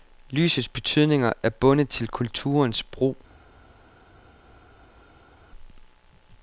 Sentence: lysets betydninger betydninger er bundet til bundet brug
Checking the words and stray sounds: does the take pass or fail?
fail